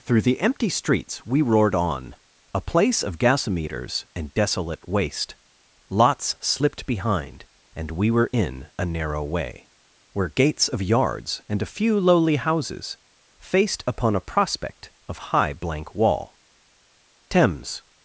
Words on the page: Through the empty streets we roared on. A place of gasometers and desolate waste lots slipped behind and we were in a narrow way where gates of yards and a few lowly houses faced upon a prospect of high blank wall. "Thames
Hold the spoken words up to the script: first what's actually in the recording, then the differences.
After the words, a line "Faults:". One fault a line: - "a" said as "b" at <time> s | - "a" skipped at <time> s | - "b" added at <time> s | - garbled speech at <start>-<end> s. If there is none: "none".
Through the empty streets we roared on. A place of gasometers and desolate waste lots slipped behind and we were in a narrow way where gates of yards and a few lowly houses faced upon a prospect of high blank wall. "Thames
Faults:
none